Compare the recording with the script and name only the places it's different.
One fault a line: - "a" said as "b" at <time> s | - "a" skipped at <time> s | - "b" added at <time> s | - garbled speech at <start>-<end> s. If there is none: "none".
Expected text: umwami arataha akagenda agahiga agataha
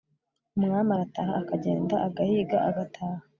none